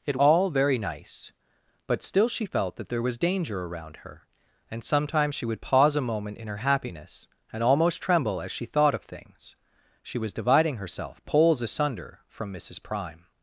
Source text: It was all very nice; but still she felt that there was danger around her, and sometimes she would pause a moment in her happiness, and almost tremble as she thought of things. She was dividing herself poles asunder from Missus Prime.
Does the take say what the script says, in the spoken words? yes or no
no